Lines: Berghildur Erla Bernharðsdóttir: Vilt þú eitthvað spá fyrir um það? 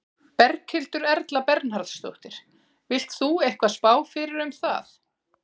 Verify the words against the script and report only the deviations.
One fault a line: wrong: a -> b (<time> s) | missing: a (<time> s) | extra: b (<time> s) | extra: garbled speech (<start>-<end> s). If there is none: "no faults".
no faults